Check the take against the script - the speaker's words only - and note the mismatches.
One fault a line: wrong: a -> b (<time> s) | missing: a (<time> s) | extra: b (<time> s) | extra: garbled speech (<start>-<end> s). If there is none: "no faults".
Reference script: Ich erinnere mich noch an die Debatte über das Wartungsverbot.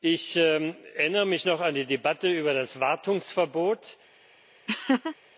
no faults